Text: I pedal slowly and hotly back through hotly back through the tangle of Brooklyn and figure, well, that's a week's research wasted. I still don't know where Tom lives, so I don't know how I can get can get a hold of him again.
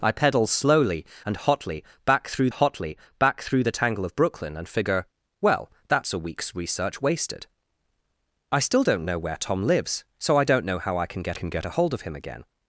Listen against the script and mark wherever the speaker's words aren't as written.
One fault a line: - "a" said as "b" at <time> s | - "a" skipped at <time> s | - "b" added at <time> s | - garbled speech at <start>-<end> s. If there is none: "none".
none